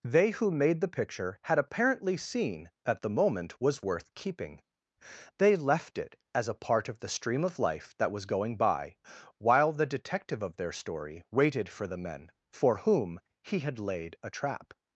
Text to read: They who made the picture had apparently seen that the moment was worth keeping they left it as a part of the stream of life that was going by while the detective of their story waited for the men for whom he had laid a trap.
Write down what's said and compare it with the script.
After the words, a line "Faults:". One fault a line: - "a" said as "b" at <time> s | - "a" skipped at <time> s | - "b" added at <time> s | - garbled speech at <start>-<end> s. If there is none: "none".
They who made the picture had apparently seen that the moment was worth keeping they left it as a part of the stream of life that was going by while the detective of their story waited for the men for whom he had laid a trap.
Faults:
none